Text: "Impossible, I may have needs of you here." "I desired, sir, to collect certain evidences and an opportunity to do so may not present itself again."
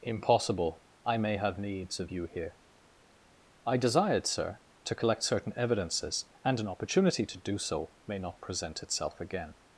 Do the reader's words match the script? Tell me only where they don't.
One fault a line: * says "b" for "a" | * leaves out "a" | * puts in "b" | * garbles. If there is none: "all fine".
all fine